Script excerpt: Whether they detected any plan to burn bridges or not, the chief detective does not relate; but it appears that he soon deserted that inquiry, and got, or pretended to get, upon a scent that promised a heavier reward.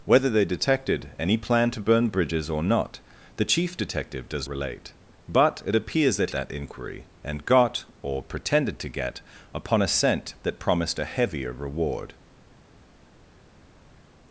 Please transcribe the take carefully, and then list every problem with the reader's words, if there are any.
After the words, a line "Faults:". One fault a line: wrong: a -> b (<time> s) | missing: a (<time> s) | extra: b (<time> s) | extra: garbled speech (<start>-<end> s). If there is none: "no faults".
Whether they detected any plan to burn bridges or not, the chief detective does relate; but it appears that that inquiry, and got, or pretended to get, upon a scent that promised a heavier reward.
Faults:
missing: not (4.5 s)
missing: he soon deserted (6.3 s)